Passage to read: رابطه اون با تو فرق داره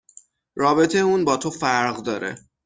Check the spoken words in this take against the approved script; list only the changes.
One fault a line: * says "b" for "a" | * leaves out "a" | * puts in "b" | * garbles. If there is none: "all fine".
all fine